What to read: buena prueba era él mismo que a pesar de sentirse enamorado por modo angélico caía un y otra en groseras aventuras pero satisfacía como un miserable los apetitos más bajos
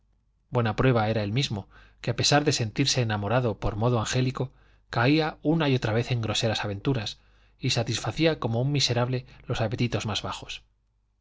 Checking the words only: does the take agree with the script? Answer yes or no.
no